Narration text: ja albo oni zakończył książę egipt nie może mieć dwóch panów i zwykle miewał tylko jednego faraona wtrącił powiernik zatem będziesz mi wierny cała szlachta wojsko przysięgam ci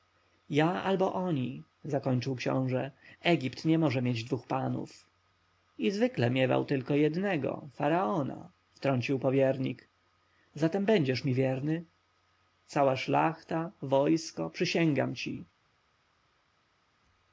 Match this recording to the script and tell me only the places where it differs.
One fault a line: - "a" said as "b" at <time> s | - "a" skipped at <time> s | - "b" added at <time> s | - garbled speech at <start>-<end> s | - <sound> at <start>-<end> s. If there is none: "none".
none